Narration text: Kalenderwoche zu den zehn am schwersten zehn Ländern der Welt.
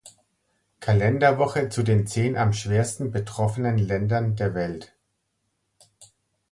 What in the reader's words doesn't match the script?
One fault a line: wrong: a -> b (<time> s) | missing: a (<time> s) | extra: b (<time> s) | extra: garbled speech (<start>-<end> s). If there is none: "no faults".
wrong: zehn -> betroffenen (3.1 s)